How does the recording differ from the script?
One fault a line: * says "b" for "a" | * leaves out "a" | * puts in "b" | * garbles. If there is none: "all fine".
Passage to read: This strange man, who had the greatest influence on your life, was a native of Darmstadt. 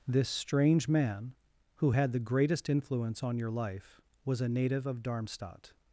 all fine